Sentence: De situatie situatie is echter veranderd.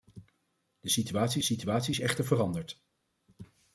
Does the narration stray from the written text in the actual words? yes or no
no